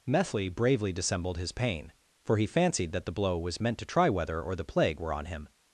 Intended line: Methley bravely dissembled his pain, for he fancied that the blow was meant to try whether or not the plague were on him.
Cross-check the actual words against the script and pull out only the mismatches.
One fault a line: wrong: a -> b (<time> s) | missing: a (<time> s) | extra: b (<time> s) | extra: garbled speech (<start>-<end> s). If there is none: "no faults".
missing: not (4.5 s)